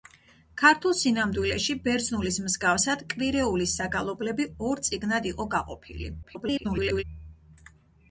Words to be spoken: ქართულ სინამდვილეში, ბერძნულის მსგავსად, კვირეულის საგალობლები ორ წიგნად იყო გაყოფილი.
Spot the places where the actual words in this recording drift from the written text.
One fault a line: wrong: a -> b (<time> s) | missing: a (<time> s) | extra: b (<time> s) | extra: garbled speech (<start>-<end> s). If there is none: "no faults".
extra: garbled speech (6.2-7.0 s)